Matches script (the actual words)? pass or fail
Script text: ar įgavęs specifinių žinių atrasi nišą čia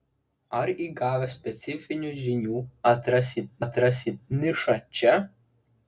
fail